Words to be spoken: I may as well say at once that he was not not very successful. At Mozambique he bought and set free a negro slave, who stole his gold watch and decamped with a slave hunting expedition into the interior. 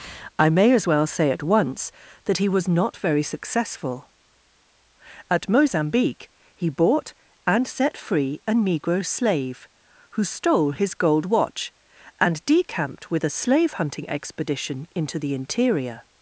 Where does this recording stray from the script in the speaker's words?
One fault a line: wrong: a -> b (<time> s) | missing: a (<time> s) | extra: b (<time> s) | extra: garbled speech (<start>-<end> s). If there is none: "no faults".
missing: not (3.0 s)